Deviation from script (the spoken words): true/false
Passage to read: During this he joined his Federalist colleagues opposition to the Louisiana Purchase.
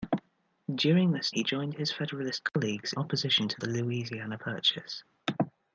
false